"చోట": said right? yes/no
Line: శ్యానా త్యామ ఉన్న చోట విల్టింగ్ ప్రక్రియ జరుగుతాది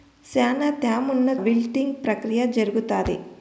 no